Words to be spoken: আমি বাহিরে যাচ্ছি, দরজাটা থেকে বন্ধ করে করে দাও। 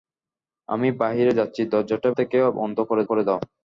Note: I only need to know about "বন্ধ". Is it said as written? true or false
true